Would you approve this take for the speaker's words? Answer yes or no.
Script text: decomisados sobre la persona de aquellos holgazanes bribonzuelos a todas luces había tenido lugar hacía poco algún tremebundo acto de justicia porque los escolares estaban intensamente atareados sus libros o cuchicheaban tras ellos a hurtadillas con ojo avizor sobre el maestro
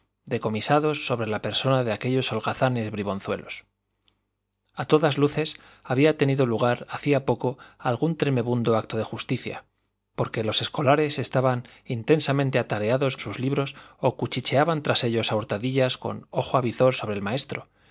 yes